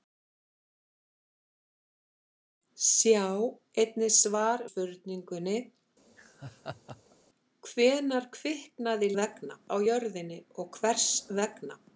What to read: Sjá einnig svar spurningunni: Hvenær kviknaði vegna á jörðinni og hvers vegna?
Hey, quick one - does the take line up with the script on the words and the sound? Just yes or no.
no